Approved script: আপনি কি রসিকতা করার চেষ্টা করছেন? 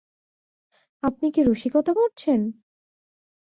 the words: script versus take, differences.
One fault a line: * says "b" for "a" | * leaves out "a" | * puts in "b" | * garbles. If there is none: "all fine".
* leaves out "করার চেষ্টা"